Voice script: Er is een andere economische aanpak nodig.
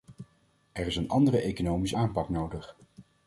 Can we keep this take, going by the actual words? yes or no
yes